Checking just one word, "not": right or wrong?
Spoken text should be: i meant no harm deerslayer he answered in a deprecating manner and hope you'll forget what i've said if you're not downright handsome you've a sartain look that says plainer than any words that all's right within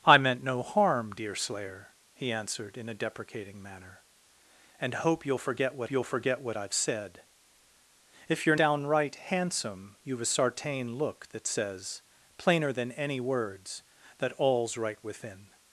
wrong